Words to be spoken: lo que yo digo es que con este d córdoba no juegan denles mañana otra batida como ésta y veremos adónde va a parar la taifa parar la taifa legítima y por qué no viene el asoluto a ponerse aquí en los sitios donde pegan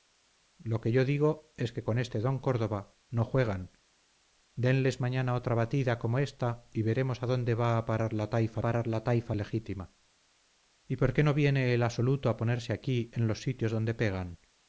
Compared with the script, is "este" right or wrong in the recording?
right